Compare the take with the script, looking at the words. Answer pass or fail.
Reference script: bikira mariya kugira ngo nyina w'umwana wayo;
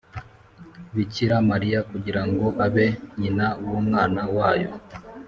fail